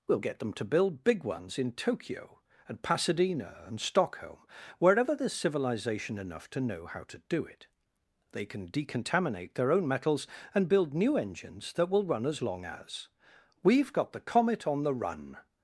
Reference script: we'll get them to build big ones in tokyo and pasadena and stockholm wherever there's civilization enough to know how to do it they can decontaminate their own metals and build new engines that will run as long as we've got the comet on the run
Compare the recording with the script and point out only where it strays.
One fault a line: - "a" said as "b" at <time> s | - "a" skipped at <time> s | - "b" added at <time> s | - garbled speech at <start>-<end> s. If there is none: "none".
none